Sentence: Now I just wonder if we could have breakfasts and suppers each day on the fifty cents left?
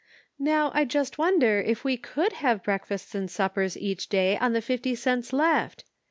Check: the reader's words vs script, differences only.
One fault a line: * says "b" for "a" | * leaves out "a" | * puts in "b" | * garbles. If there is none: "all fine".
all fine